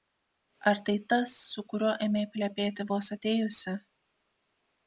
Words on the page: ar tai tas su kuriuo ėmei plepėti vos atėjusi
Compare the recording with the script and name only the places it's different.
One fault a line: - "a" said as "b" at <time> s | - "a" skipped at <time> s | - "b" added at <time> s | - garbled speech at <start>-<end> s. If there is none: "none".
none